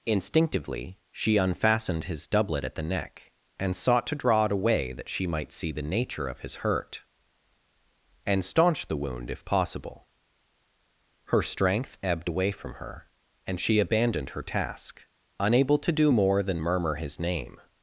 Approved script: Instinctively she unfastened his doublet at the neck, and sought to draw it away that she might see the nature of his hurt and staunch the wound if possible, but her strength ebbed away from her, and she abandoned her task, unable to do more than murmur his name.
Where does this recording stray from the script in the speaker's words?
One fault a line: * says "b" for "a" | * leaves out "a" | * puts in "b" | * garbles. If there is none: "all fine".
* leaves out "but"